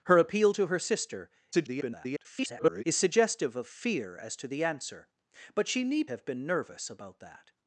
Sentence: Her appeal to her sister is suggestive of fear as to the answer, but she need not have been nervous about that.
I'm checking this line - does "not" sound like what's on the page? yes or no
no